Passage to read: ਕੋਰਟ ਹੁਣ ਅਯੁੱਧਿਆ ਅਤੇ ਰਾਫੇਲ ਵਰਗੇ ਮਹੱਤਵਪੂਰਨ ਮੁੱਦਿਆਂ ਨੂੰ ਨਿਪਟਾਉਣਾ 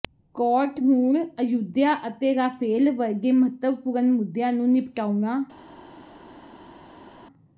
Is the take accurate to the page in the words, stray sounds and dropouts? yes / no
yes